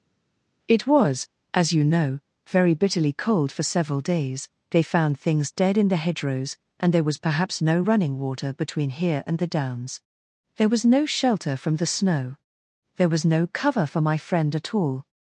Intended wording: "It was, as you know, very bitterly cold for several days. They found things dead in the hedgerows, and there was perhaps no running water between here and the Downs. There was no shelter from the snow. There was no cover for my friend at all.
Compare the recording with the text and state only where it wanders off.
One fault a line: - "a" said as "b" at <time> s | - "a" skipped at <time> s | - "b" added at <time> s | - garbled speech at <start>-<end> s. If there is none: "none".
none